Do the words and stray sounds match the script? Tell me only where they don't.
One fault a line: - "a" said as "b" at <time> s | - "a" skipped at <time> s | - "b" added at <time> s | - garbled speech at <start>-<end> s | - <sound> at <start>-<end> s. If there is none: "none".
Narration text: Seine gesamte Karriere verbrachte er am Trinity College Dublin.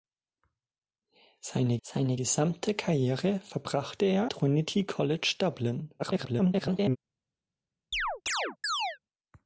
- "seine" added at 1.8 s
- "am" skipped at 4.3 s
- garbled speech at 6.0-7.0 s
- chirp at 7.9-9.0 s